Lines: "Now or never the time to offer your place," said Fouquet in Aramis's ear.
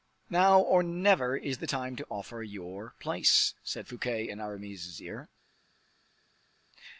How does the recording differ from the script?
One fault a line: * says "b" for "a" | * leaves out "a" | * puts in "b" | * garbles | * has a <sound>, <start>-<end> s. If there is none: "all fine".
* puts in "is"